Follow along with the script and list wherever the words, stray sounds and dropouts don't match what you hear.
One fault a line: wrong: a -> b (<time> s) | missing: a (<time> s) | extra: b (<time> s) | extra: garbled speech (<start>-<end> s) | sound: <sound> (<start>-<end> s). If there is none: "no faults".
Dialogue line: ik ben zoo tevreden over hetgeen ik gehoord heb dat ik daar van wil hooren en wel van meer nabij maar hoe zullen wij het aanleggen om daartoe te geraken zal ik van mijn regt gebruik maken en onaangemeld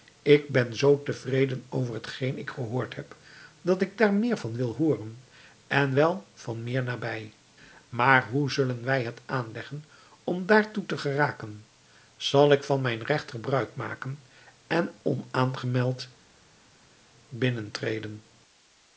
extra: meer (4.1 s)